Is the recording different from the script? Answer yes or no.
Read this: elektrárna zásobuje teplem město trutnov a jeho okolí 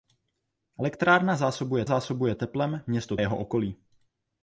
yes